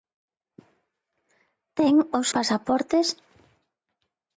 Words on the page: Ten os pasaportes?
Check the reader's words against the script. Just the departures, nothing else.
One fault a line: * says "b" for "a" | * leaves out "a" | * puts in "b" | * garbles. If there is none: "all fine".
all fine